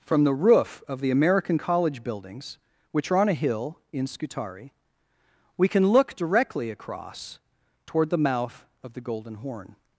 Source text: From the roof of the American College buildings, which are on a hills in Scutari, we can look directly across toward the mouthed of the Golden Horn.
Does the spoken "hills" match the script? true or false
false